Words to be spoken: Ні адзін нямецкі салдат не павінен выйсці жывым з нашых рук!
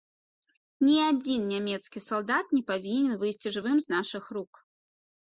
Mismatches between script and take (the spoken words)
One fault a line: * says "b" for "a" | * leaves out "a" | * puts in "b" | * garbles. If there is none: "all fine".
all fine